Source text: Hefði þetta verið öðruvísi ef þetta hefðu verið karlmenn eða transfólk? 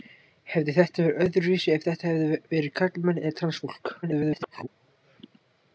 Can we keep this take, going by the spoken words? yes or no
no